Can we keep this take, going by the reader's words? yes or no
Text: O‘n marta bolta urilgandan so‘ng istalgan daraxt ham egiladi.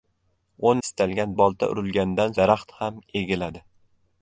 no